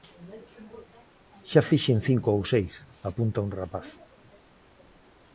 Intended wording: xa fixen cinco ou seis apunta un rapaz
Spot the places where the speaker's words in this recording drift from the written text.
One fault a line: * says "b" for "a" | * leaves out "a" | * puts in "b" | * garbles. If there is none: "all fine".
all fine